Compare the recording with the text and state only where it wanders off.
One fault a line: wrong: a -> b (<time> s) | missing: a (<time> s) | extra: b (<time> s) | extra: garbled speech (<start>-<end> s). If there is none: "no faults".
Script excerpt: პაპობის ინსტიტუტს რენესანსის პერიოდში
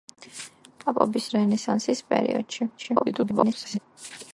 missing: ინსტიტუტს (1.3 s)
extra: garbled speech (2.8-3.8 s)